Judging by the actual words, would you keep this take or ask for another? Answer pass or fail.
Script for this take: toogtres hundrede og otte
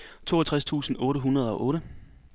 fail